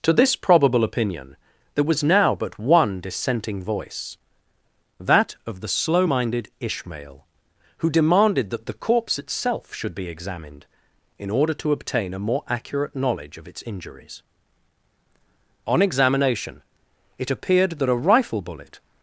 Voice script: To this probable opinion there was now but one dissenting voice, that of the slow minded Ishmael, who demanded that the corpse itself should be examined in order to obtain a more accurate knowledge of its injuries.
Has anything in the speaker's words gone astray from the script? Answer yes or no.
yes